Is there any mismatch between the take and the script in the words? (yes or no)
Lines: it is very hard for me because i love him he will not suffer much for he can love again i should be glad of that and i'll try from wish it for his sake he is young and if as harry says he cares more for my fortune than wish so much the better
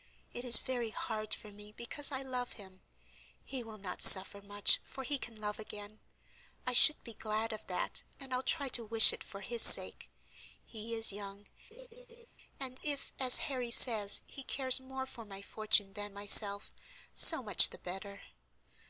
yes